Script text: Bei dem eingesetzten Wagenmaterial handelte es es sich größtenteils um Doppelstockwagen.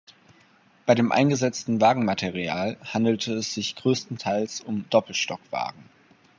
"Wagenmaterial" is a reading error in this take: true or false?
false